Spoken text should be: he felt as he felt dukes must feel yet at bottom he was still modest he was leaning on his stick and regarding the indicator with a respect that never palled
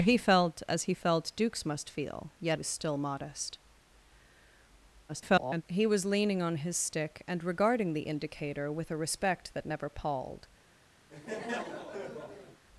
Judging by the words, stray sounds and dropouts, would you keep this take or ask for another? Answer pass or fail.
fail